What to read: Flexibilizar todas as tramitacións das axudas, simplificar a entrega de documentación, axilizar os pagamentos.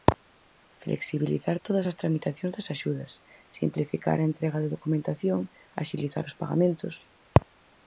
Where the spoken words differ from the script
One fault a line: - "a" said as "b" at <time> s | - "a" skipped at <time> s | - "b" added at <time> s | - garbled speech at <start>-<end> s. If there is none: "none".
none